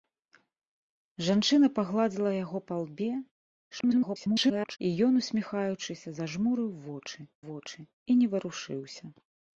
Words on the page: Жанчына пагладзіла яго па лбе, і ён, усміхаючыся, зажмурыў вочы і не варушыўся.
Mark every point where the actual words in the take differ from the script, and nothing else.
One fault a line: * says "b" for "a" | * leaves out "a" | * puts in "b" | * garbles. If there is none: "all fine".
* garbles
* puts in "вочы"